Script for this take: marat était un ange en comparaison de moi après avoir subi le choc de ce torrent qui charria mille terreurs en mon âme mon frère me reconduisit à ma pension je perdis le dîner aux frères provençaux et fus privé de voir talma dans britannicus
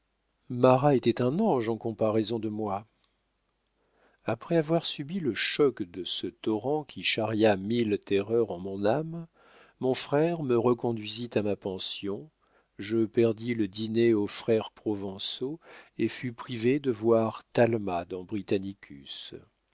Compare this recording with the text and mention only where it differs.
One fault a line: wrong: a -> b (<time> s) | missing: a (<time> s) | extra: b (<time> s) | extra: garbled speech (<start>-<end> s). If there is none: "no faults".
no faults